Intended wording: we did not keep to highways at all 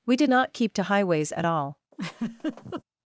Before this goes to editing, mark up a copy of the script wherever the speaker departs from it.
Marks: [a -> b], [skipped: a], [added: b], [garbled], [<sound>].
we did not keep to highways at all [laugh]